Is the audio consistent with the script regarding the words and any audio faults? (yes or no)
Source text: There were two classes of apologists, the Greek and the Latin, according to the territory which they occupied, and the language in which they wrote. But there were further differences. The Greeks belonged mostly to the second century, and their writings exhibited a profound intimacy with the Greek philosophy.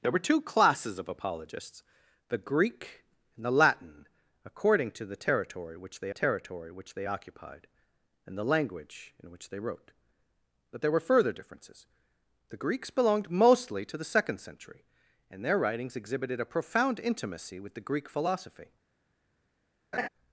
no